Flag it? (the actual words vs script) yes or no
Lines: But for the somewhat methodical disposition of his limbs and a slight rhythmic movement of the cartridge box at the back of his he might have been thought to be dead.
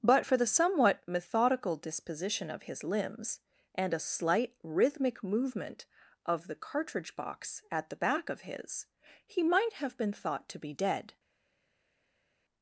no